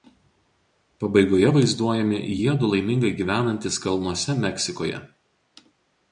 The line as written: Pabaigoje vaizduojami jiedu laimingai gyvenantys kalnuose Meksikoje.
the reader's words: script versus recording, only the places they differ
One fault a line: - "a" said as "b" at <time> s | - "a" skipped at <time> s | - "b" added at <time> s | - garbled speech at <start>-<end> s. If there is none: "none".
none